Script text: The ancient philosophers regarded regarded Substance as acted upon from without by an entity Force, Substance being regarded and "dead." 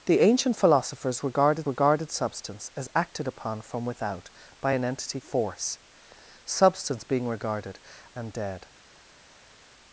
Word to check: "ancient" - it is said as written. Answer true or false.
true